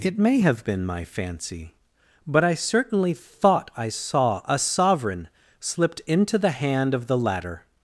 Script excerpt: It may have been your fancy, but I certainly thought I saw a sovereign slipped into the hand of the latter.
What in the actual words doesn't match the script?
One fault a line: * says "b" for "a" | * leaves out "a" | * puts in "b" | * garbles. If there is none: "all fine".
* says "my" for "your"